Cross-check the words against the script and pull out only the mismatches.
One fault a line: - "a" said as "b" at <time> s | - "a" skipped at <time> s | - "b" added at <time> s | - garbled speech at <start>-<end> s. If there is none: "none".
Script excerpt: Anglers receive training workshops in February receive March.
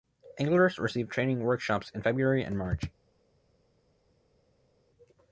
- "receive" said as "and" at 2.4 s